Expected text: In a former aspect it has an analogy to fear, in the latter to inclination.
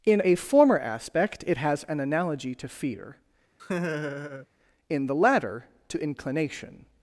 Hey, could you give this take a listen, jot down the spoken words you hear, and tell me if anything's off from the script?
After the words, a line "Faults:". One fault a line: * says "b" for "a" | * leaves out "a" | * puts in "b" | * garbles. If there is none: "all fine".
In a former aspect it has an analogy to fear, in the latter to inclination.
Faults:
all fine